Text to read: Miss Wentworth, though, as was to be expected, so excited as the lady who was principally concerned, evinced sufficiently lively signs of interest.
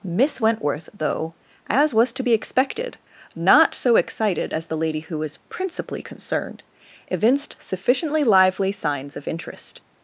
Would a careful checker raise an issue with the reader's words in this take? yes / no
yes